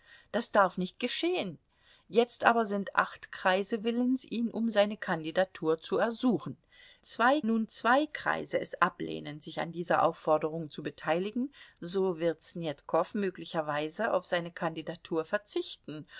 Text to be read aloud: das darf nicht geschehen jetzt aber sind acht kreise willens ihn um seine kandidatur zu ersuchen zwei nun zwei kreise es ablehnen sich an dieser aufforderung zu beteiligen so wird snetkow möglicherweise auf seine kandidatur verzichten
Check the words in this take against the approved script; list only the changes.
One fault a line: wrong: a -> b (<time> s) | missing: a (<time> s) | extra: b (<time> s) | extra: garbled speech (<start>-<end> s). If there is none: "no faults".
no faults